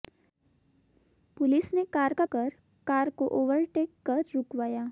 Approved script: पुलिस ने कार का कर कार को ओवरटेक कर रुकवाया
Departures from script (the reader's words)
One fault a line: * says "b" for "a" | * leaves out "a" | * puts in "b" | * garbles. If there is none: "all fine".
all fine